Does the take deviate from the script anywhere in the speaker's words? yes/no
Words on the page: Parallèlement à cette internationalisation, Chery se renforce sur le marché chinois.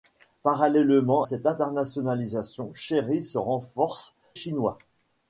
yes